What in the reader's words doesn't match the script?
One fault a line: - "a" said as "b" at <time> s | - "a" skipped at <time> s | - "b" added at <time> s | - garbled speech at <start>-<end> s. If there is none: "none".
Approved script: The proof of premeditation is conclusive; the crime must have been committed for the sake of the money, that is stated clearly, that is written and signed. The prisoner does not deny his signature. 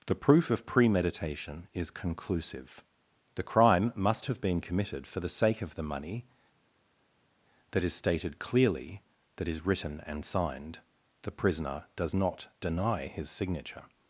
none